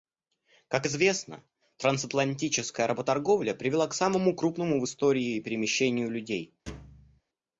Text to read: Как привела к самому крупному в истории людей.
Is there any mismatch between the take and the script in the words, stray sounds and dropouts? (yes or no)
yes